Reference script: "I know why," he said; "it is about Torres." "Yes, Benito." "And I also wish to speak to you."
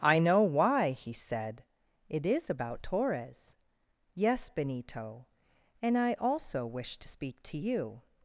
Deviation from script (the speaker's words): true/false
false